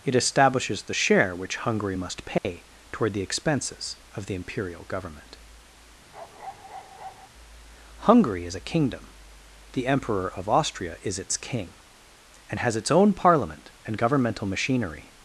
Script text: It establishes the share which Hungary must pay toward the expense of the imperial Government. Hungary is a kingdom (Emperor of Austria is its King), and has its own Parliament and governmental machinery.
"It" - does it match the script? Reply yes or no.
yes